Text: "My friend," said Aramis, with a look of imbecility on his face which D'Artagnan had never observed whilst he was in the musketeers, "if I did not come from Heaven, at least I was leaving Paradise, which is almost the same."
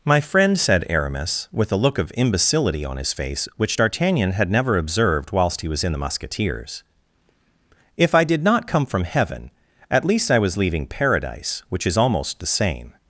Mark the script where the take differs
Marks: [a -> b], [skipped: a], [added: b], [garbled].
"My friend," said Aramis, with a look of imbecility on his face which D'Artagnan had never observed whilst he was in the musketeers, "if I did not come from Heaven, at least I was leaving Paradise, which is almost the same."